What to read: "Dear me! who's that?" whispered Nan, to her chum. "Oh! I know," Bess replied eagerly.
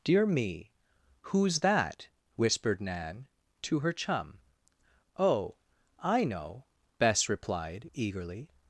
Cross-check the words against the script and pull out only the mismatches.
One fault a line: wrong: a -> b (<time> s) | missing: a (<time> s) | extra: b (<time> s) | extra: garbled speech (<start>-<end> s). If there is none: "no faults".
no faults